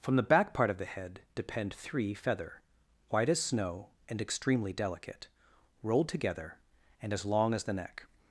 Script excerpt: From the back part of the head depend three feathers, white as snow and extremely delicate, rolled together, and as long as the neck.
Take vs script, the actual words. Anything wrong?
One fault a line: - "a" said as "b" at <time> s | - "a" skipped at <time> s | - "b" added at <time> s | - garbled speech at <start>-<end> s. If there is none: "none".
- "feathers" said as "feather" at 2.1 s